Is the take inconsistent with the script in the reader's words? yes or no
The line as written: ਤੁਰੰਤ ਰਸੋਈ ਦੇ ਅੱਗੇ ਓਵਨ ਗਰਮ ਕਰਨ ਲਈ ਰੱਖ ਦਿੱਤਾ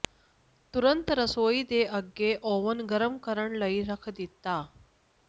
no